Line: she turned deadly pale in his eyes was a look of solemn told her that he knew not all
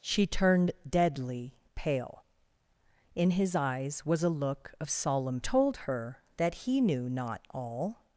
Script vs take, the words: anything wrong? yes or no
no